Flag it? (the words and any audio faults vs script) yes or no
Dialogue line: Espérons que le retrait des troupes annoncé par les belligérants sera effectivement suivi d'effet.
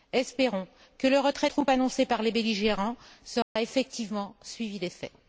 yes